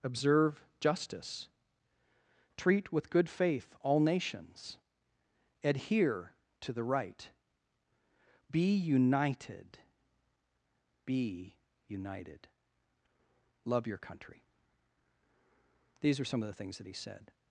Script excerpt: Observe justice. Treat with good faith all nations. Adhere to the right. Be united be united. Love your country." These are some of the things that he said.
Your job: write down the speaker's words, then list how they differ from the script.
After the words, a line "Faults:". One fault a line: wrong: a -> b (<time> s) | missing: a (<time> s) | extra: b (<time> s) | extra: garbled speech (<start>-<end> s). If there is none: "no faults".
Observe justice. Treat with good faith all nations. Adhere to the right. Be united be united. Love your country." These are some of the things that he said.
Faults:
no faults